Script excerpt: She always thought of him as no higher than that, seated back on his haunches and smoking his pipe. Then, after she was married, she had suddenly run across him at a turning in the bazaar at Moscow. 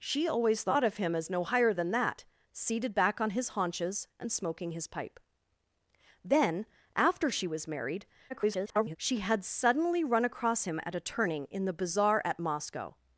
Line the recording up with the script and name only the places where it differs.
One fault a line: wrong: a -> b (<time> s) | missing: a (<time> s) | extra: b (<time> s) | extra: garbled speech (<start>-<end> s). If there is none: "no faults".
extra: garbled speech (8.3-9.0 s)